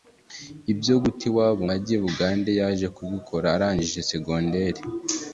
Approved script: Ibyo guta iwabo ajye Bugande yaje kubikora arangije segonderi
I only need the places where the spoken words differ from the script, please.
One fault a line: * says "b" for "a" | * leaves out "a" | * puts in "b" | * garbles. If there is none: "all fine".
all fine